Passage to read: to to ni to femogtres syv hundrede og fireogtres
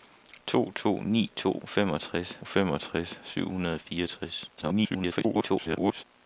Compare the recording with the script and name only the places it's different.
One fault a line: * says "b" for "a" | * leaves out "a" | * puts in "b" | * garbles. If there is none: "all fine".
* puts in "femogtres"
* garbles